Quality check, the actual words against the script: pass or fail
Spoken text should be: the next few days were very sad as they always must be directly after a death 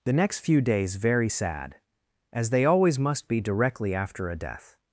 fail